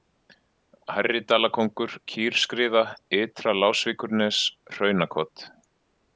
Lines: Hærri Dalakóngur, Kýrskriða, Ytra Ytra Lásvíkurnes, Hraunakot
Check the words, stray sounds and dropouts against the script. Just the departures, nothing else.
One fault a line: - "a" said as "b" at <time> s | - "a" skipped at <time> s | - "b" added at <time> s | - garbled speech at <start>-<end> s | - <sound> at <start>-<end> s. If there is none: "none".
- "Ytra" skipped at 3.6 s